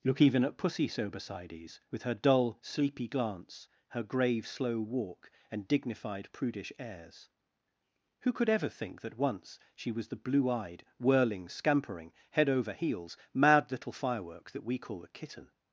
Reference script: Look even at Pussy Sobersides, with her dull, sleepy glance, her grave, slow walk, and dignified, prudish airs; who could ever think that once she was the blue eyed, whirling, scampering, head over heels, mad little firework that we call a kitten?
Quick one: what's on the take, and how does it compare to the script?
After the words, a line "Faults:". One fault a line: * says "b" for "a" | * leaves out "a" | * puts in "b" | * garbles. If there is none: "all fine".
Look even at Pussy Sobersides, with her dull, sleepy glance, her grave, slow walk, and dignified, prudish airs; who could ever think that once she was the blue eyed, whirling, scampering, head over heels, mad little firework that we call a kitten?
Faults:
all fine